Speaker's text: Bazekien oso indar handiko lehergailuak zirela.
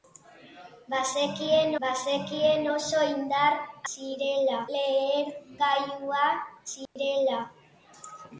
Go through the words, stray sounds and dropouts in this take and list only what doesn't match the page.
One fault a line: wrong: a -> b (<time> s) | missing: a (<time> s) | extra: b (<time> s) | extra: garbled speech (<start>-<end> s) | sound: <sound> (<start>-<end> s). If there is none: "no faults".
extra: bazekien (1.8 s)
wrong: handiko -> zirela (3.9 s)
sound: dropout (6.9-7.0 s)